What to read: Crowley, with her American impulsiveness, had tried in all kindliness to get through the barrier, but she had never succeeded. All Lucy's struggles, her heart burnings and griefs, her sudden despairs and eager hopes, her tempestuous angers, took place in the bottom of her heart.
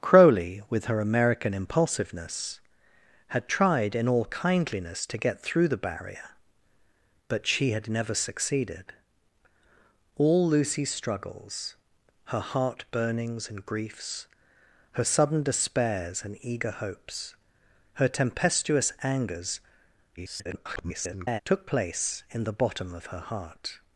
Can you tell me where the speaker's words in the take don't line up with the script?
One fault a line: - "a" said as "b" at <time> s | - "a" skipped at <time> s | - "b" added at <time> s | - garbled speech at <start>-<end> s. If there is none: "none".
- garbled speech at 20.2-21.4 s